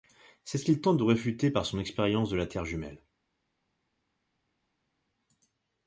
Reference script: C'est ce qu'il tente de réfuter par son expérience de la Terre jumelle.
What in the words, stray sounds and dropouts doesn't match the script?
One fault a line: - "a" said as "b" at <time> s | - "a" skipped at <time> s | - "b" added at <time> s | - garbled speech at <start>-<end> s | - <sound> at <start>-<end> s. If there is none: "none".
none